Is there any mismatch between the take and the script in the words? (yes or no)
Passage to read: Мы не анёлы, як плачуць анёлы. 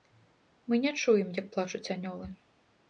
yes